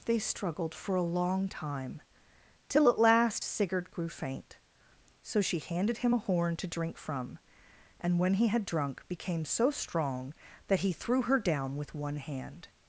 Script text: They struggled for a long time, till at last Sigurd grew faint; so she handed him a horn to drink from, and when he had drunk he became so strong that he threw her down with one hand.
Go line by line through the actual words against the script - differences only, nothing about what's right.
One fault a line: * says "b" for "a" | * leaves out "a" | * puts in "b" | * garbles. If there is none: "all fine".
* leaves out "he"